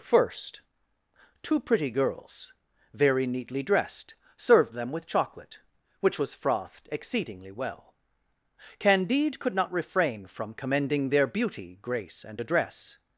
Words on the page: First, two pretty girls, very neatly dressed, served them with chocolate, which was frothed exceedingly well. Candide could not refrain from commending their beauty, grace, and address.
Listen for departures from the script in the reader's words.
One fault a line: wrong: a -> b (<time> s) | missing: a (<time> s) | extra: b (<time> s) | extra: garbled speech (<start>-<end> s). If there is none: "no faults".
no faults